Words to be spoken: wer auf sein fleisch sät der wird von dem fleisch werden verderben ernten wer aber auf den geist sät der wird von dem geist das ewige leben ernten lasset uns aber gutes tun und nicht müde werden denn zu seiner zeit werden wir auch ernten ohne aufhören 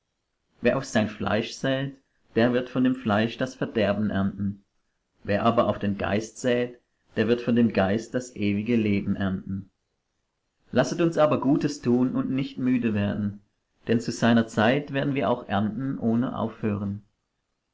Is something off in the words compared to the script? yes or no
yes